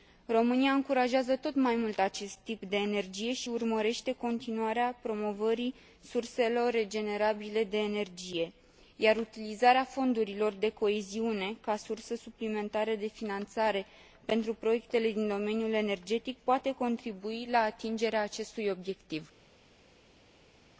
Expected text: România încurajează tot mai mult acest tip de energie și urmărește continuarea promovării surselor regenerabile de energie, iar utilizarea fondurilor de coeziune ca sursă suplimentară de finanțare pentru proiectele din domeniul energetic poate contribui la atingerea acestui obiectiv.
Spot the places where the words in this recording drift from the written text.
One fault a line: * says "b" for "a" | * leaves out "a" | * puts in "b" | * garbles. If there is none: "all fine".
all fine